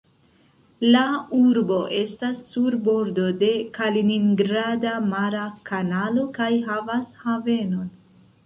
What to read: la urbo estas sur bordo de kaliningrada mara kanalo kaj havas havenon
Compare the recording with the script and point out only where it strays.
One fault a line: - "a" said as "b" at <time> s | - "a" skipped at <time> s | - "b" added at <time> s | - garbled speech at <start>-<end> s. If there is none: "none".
none